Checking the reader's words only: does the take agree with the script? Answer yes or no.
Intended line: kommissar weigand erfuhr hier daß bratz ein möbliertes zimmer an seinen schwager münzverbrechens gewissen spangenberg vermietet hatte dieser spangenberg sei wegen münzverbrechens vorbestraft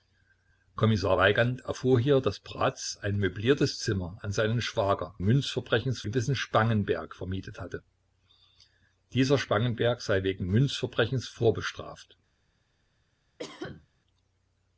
yes